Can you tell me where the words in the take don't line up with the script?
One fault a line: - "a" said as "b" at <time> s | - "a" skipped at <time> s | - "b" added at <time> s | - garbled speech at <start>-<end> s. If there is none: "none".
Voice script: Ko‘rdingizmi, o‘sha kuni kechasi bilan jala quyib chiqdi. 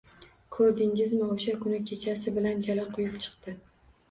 none